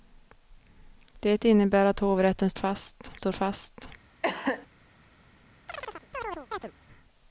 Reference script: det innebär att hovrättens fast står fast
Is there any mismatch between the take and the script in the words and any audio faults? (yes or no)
yes